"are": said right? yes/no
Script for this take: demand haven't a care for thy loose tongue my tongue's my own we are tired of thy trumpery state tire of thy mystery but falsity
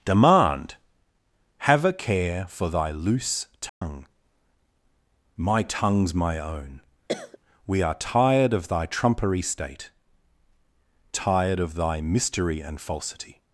yes